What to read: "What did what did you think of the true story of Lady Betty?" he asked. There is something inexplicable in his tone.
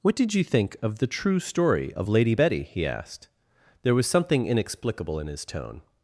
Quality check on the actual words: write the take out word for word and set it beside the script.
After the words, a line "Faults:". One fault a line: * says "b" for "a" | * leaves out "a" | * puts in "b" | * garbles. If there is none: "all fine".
"What did you think of the true story of Lady Betty?" he asked. There was something inexplicable in his tone.
Faults:
* leaves out "what did"
* says "was" for "is"